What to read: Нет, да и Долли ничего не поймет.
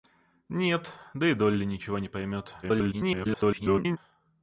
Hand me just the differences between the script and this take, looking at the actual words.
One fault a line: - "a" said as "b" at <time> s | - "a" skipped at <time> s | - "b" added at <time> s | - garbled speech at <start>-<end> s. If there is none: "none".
- garbled speech at 2.6-4.0 s